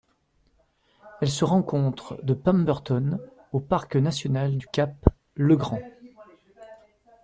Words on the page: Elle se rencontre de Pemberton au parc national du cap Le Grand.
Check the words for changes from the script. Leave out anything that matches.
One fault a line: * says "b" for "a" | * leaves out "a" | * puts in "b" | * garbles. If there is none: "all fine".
all fine